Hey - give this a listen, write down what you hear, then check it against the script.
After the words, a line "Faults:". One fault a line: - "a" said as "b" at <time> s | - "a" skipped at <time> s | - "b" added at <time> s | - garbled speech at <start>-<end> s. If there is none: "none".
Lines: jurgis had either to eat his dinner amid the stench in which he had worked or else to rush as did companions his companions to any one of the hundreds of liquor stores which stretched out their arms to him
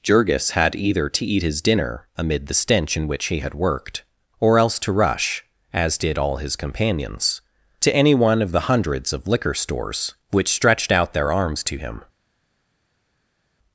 jurgis had either to eat his dinner amid the stench in which he had worked or else to rush as did all his companions to any one of the hundreds of liquor stores which stretched out their arms to him
Faults:
- "companions" said as "all" at 6.2 s